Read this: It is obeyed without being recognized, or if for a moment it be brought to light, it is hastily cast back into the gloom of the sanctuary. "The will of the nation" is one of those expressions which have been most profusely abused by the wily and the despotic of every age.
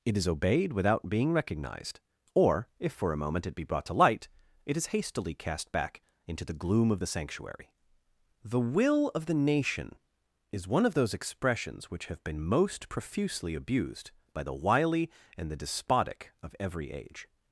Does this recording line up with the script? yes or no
yes